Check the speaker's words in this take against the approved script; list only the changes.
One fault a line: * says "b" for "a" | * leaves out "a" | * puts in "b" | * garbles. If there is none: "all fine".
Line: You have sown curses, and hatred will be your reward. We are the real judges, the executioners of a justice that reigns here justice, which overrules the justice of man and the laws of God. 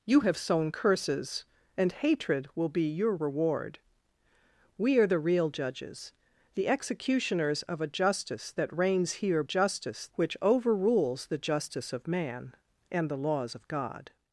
all fine